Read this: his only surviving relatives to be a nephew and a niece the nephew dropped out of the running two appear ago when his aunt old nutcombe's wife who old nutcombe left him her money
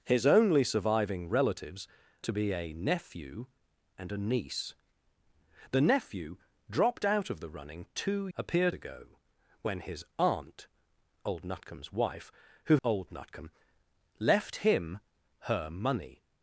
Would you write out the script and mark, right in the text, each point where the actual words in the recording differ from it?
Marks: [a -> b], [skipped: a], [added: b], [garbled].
his only surviving relatives to be a nephew and a niece the nephew dropped out of the running two appear ago when his aunt old nutcombe's wife who old nutcombe left him her money